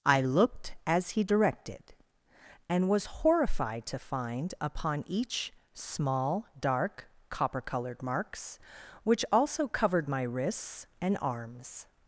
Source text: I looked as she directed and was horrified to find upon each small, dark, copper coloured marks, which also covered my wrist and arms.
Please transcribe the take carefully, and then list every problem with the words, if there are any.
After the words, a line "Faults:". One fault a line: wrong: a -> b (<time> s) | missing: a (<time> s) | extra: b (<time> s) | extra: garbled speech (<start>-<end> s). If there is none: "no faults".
I looked as he directed and was horrified to find upon each small, dark, copper coloured marks, which also covered my wrists and arms.
Faults:
wrong: she -> he (1.1 s)
wrong: wrist -> wrists (10.2 s)